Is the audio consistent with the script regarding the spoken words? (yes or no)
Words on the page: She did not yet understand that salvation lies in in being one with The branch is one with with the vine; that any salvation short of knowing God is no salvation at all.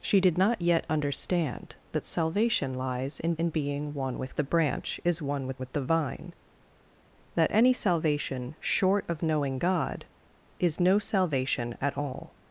yes